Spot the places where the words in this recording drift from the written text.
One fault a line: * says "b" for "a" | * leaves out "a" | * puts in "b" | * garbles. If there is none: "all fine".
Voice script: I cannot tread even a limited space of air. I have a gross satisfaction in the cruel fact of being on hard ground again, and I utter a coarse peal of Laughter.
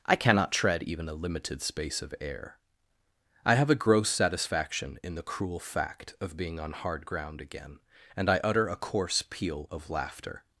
all fine